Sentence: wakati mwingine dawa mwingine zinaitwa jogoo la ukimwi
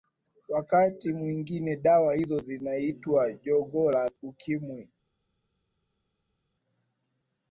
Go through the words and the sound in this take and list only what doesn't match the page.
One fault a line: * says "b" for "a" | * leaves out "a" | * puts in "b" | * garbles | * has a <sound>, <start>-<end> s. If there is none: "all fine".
* says "hizo" for "mwingine"